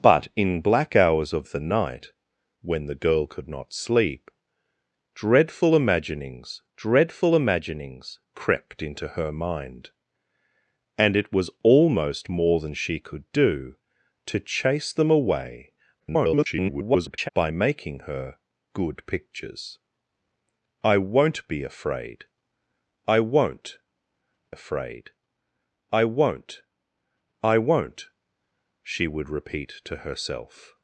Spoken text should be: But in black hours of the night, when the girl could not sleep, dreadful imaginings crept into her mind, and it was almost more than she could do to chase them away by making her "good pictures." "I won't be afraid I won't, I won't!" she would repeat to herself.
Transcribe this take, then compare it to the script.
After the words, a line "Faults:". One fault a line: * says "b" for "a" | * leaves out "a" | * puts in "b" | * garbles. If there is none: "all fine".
But in black hours of the night, when the girl could not sleep, dreadful imaginings dreadful imaginings crept into her mind, and it was almost more than she could do to chase them away [garbled] by making her "good pictures." "I won't be afraid I won't afraid I won't, I won't!" she would repeat to herself.
Faults:
* puts in "dreadful imaginings"
* garbles
* puts in "afraid I won't"